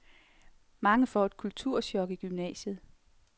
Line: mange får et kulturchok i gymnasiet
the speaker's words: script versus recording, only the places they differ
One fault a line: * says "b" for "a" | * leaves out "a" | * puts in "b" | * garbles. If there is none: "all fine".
all fine